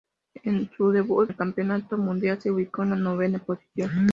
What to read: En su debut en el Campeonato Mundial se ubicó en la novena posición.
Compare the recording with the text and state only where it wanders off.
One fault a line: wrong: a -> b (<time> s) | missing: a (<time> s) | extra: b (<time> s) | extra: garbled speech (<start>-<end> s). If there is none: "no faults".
missing: en (1.3 s)